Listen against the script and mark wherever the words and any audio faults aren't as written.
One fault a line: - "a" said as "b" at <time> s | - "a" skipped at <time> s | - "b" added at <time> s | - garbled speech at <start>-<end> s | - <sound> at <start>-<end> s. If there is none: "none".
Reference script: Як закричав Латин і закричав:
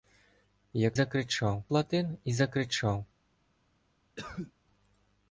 - cough at 4.2-4.5 s